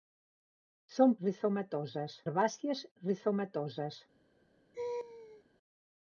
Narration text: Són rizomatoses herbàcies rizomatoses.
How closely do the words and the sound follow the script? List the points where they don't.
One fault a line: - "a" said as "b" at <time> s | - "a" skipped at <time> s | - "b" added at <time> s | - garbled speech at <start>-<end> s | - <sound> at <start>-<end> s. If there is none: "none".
- laugh at 4.7-5.4 s